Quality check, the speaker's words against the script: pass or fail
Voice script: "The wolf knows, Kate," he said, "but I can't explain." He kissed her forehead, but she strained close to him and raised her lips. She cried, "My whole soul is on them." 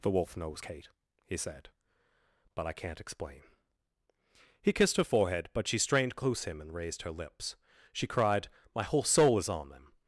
fail